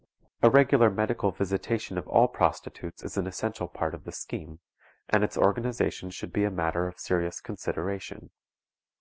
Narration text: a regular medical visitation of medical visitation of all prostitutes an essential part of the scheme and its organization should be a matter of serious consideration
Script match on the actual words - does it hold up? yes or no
no